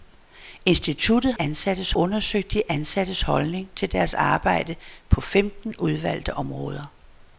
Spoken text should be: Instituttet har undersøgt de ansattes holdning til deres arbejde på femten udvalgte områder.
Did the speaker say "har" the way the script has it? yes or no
no